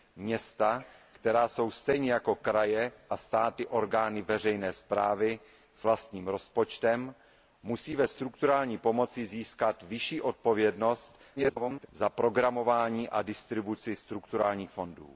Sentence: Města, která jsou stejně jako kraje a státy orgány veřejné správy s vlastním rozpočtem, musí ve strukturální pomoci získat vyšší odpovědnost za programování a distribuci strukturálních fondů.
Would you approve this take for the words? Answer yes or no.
no